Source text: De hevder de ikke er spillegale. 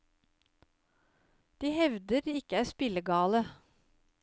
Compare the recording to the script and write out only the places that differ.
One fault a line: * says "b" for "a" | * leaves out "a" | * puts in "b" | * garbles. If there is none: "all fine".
all fine